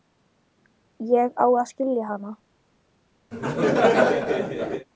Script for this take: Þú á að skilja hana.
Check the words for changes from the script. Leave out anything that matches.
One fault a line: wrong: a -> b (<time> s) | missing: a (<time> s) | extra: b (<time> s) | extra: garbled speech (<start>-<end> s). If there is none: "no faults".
wrong: Þú -> Ég (1.1 s)